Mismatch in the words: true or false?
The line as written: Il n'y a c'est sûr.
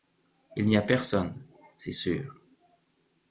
true